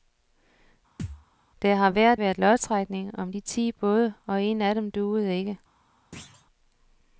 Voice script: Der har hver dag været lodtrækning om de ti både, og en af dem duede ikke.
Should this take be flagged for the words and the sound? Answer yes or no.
yes